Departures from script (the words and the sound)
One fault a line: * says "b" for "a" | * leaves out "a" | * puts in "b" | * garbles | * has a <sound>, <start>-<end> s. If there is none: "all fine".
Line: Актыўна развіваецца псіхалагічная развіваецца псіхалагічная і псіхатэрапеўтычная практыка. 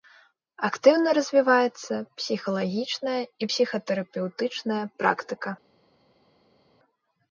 * leaves out "развіваецца псіхалагічная"